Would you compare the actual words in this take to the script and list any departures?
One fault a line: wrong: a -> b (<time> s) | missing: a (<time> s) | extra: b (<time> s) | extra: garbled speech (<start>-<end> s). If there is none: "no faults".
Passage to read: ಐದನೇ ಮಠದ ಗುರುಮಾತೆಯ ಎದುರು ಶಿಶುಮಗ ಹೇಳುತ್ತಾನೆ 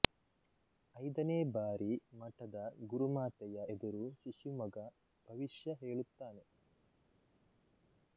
extra: ಬಾರಿ (1.5 s)
extra: ಭವಿಷ್ಯ (5.3 s)